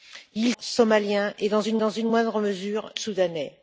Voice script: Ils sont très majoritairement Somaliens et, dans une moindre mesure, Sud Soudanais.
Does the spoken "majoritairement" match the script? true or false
false